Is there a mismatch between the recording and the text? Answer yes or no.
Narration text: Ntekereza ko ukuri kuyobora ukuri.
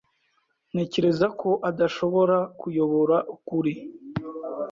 yes